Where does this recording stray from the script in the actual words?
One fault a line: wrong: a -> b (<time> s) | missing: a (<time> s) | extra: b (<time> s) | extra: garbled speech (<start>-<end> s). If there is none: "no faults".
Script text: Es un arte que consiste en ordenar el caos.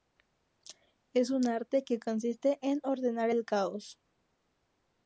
no faults